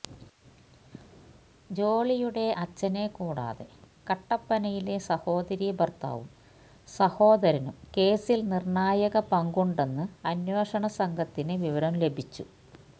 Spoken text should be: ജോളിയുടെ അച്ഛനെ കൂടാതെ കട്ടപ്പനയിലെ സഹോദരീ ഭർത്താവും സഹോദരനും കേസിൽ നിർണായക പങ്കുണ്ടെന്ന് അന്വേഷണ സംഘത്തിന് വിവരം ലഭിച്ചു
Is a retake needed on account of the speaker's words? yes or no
no